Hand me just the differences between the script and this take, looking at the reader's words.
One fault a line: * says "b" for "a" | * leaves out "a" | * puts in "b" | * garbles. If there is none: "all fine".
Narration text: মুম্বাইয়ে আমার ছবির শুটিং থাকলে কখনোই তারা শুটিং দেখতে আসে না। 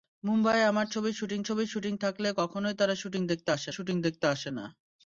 * puts in "ছবির শুটিং"
* puts in "শুটিং দেখতে আসে"